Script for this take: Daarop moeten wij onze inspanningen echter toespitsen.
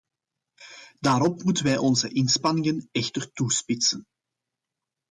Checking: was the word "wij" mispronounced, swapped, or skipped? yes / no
no